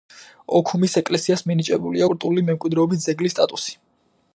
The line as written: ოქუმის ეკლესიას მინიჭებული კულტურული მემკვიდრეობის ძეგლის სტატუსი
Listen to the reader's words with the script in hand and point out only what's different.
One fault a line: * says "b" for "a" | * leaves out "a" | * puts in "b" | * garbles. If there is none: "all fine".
all fine